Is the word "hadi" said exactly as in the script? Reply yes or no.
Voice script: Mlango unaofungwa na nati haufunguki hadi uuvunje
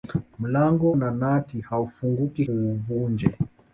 no